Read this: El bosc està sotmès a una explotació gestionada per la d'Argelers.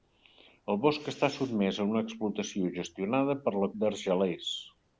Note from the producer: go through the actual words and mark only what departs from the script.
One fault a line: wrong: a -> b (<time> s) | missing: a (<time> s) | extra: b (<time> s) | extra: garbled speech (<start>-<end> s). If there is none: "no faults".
no faults